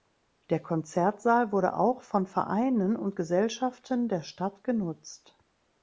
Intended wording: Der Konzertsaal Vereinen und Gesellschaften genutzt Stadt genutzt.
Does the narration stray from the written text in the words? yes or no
yes